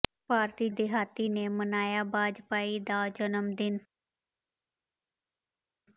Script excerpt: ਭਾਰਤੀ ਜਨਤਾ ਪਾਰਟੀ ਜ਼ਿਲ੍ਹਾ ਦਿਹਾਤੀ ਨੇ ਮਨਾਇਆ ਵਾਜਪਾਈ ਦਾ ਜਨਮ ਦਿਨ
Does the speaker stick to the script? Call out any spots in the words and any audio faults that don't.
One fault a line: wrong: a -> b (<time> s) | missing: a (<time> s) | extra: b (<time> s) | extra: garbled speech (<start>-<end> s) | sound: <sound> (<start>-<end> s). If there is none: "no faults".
missing: ਜਨਤਾ ਪਾਰਟੀ ਜ਼ਿਲ੍ਹਾ (0.7 s)